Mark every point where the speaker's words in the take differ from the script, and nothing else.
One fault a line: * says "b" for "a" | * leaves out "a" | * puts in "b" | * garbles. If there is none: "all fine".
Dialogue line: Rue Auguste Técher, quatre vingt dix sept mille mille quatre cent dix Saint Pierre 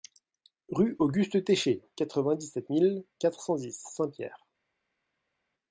* leaves out "mille"